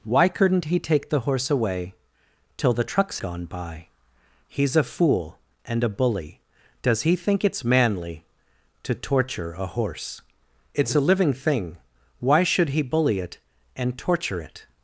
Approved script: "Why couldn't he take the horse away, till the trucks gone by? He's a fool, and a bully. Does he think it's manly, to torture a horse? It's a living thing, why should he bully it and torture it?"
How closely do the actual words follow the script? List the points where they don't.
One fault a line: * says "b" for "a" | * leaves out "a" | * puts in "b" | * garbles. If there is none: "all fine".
all fine